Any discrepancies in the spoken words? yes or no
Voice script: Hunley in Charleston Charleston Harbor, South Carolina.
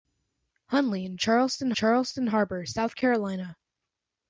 no